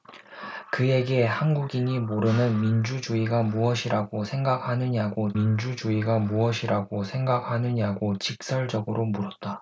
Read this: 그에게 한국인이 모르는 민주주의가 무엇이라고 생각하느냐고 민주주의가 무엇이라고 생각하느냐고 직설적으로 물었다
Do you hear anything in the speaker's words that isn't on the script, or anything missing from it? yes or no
no